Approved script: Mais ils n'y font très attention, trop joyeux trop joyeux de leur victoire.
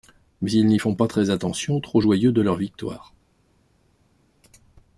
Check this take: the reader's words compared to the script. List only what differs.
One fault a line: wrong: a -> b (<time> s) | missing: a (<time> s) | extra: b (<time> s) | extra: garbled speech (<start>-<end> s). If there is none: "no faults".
extra: pas (1.0 s)
missing: trop joyeux (2.3 s)